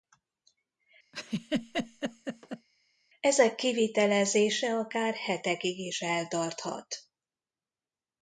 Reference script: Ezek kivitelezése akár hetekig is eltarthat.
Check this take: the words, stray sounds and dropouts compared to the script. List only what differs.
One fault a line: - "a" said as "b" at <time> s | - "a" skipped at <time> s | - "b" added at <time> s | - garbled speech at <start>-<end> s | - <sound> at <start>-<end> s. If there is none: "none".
- laugh at 1.1-2.7 s